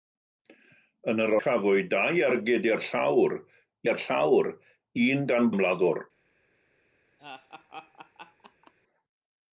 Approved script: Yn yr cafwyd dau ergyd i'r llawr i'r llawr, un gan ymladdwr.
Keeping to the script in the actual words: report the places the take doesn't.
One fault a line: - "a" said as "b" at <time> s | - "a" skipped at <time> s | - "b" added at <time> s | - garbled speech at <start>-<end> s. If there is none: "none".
none